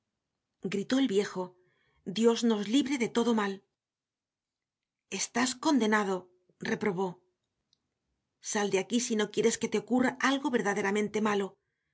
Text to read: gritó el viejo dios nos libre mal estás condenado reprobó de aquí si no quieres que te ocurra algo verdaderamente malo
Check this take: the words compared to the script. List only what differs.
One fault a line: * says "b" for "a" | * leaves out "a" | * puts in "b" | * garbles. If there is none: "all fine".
* puts in "de todo"
* puts in "sal"